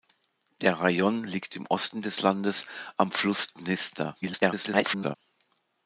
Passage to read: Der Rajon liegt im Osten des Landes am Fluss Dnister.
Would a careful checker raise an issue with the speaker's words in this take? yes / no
yes